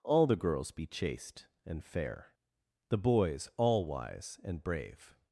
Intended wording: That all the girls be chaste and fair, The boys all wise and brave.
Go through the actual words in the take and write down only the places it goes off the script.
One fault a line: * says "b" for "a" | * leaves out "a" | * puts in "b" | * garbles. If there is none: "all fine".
* leaves out "That"